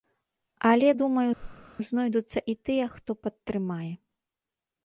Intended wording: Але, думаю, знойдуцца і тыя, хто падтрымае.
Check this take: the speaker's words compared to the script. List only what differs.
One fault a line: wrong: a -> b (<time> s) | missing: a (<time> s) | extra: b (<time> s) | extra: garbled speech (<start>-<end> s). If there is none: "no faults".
no faults